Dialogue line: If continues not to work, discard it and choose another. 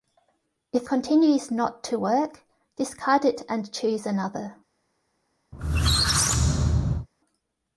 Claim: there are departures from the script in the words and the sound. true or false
true